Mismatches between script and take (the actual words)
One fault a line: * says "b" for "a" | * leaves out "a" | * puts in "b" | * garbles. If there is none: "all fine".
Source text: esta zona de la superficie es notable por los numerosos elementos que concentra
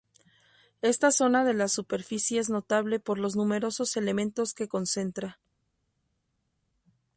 all fine